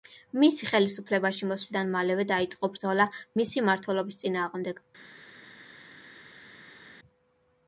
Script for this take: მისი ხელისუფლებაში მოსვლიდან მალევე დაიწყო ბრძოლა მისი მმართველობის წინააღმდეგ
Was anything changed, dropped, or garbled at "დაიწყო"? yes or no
no